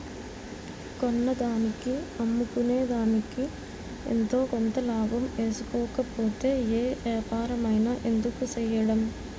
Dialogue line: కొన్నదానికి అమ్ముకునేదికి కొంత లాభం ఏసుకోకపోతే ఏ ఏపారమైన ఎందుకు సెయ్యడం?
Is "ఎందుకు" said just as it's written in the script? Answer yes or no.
yes